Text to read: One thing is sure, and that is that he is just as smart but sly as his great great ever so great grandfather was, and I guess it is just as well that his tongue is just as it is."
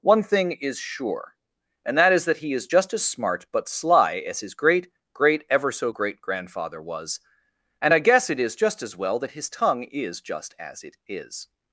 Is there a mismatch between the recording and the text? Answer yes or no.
no